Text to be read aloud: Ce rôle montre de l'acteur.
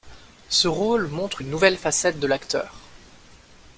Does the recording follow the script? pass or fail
fail